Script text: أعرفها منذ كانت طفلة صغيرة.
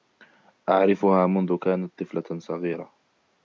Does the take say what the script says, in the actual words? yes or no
yes